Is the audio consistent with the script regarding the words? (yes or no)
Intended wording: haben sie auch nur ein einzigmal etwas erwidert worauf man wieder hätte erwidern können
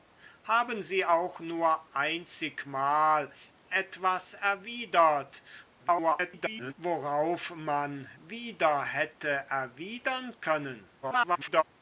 no